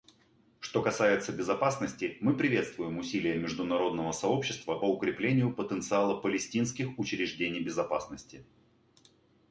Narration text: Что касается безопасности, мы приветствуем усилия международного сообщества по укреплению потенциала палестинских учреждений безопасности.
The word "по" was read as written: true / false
false